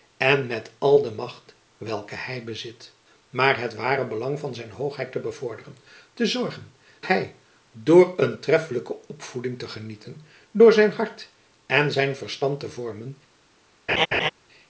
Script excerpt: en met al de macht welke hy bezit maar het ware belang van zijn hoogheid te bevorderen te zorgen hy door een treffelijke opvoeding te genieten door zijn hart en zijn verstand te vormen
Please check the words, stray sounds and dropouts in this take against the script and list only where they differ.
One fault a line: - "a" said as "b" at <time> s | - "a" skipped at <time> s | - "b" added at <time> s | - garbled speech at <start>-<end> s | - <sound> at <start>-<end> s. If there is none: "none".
- laugh at 13.9-14.3 s